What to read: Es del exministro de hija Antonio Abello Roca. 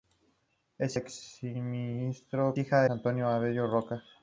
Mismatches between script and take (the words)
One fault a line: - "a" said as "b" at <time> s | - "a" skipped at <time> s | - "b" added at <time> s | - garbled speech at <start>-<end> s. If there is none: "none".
none